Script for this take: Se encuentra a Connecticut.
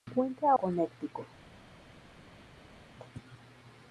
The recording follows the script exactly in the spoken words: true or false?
true